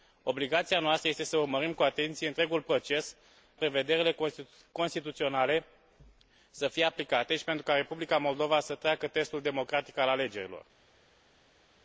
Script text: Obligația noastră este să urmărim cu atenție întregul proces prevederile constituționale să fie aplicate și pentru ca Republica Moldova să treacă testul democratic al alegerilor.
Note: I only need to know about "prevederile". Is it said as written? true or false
true